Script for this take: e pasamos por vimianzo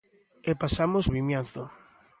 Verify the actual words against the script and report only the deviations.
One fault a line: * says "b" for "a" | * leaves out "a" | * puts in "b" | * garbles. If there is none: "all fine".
* leaves out "por"